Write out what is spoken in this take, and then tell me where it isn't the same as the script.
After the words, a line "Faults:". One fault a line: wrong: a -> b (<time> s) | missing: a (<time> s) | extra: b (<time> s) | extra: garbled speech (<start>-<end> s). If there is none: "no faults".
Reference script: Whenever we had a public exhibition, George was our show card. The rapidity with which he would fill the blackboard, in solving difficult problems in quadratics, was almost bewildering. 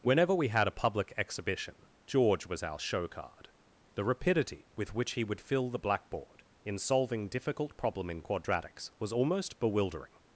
Whenever we had a public exhibition, George was our show card. The rapidity with which he would fill the blackboard, in solving difficult problem in quadratics, was almost bewildering.
Faults:
wrong: problems -> problem (7.8 s)